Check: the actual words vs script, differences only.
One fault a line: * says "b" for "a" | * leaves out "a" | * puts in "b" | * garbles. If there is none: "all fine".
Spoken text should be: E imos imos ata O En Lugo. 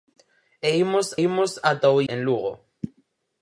all fine